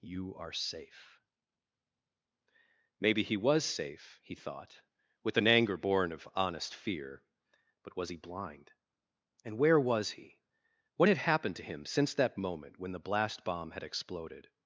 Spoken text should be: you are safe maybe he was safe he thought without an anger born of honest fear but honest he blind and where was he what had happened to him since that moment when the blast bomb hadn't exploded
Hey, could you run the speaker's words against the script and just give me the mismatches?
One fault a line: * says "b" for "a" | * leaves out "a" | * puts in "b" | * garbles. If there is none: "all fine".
* says "with" for "without"
* says "was" for "honest"
* says "had" for "hadn't"